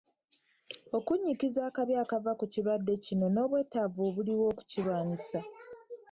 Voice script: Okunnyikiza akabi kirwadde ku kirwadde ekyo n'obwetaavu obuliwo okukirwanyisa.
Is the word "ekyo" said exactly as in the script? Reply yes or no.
no